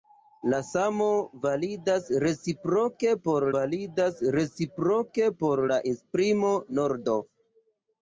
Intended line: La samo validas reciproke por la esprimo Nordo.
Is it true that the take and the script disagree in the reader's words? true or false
true